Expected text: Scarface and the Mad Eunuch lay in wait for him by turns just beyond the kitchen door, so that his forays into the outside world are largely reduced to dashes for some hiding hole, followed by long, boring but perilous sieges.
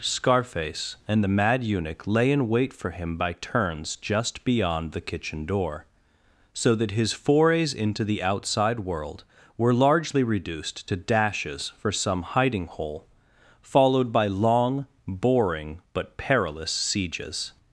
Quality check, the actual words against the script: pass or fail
fail